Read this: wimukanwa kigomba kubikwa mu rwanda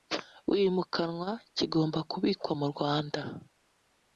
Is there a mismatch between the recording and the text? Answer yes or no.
no